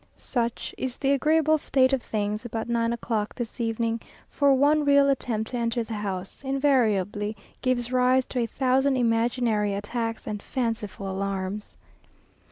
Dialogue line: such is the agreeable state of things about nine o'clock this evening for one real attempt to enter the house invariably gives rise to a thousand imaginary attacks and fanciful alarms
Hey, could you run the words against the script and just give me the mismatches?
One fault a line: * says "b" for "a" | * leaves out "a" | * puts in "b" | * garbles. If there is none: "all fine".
all fine